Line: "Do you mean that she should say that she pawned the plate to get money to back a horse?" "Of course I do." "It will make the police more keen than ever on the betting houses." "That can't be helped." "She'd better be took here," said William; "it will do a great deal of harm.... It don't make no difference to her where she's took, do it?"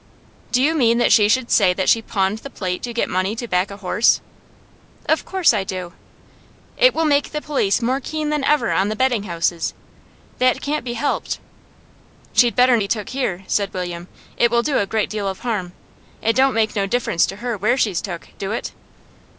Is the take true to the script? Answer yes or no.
yes